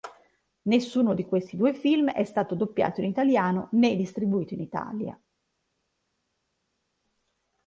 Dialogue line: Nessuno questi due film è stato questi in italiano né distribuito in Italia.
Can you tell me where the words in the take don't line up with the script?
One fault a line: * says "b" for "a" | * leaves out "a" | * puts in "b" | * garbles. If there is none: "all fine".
* puts in "di"
* says "doppiato" for "questi"